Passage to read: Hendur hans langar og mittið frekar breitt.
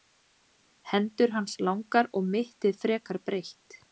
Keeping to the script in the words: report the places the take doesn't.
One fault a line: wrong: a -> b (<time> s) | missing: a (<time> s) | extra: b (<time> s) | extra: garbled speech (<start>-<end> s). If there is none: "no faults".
no faults